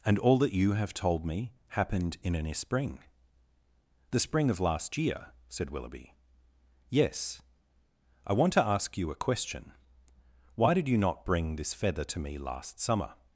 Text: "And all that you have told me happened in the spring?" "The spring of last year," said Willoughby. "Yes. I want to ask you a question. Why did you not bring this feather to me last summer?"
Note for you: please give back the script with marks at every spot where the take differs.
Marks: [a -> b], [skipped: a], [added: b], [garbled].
"And all that you have told me happened in [the -> an] spring?" "The spring of last year," said Willoughby. "Yes. I want to ask you a question. Why did you not bring this feather to me last summer?"